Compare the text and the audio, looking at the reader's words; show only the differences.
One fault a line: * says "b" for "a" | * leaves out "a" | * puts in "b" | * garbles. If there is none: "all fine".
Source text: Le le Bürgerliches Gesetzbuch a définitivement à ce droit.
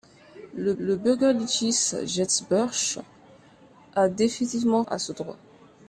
all fine